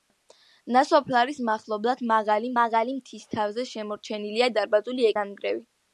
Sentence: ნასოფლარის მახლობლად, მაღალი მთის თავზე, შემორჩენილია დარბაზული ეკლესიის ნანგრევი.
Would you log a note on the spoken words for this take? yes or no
yes